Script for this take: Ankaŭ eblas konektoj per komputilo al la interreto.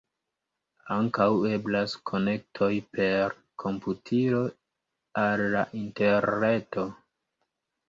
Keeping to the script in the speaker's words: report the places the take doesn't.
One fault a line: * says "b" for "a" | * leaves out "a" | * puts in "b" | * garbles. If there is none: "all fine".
all fine